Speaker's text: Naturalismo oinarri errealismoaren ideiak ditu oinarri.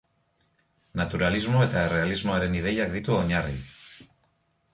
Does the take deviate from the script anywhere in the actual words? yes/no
yes